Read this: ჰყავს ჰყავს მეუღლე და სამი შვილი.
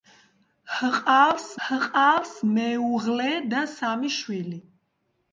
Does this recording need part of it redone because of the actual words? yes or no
no